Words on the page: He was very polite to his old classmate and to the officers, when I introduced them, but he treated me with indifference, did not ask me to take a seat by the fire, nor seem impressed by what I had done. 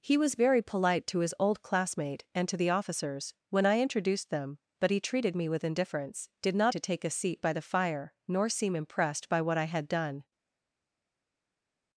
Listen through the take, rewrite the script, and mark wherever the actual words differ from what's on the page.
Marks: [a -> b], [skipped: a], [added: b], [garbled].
He was very polite to his old classmate and to the officers, when I introduced them, but he treated me with indifference, did not [skipped: ask me] to take a seat by the fire, nor seem impressed by what I had done.